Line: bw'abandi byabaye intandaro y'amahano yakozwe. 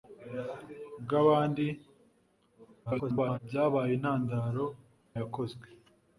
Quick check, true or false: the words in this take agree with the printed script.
false